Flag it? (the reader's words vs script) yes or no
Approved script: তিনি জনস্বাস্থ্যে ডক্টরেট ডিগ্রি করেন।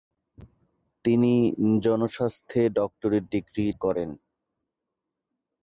no